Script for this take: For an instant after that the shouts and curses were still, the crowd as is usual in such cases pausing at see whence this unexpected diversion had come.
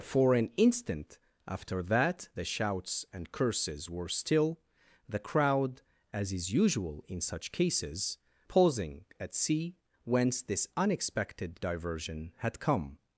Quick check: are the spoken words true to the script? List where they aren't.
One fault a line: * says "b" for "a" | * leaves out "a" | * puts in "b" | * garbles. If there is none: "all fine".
all fine